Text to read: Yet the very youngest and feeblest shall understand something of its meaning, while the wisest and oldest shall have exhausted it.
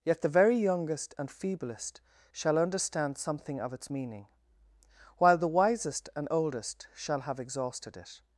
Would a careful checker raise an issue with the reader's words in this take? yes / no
no